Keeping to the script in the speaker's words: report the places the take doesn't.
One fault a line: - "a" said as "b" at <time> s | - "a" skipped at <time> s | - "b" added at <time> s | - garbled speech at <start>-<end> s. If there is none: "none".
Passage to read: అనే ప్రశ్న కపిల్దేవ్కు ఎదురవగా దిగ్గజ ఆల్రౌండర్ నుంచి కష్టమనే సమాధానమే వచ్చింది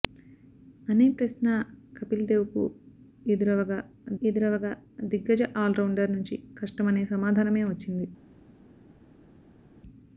- "ఎదురవగా" added at 4.2 s